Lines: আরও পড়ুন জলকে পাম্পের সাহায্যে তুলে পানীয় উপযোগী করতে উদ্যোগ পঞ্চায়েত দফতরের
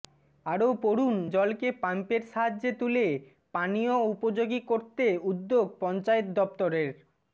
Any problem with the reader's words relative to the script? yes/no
no